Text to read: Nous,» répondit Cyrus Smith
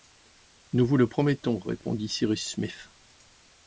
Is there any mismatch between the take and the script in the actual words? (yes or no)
yes